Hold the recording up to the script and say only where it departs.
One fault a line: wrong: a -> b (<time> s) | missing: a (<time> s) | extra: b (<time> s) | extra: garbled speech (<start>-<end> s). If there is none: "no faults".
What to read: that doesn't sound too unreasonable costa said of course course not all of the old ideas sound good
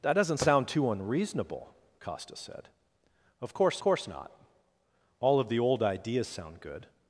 no faults